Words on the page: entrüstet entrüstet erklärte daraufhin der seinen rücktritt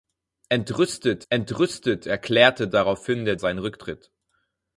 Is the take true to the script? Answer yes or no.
yes